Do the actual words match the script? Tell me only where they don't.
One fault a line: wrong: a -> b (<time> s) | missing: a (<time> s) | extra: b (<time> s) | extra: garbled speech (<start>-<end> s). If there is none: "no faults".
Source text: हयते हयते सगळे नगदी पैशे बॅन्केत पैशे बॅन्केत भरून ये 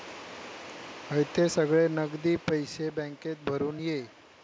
missing: हयते (1.5 s)
missing: पैशे बॅन्केत (3.4 s)